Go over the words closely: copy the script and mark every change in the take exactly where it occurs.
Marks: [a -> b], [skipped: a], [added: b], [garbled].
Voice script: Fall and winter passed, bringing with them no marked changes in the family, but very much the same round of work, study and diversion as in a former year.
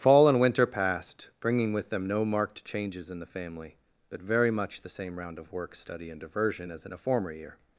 Fall and winter passed, bringing with them no marked changes in the family, but very much the same round of work, study and diversion as in a former year.